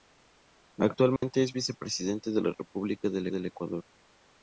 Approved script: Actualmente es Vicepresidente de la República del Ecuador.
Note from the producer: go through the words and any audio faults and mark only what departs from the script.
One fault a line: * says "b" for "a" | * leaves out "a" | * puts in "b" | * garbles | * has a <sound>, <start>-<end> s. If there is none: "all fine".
* has a dropout, 1.2-1.2 s
* puts in "del"